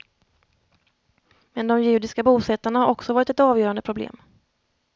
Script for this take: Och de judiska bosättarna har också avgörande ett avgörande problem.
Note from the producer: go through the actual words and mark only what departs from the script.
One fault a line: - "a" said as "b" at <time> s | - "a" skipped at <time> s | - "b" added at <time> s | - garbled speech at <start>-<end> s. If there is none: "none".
- "Och" said as "Men" at 1.5 s
- "avgörande" said as "varit" at 3.1 s